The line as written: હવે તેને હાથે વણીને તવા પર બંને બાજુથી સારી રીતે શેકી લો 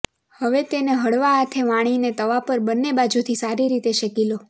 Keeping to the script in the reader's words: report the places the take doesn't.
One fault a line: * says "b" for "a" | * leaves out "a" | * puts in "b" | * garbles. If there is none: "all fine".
* puts in "હળવા"